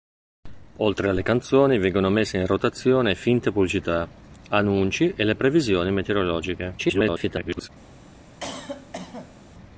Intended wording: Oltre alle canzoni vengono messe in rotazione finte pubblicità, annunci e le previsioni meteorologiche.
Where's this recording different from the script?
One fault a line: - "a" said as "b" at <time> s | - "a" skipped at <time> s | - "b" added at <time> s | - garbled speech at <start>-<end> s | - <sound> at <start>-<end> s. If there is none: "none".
- garbled speech at 6.8-7.7 s
- cough at 8.4-9.4 s